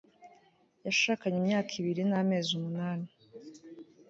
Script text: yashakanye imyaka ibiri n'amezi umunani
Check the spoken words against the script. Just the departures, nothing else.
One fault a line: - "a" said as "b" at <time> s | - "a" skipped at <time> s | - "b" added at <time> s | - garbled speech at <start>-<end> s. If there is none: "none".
none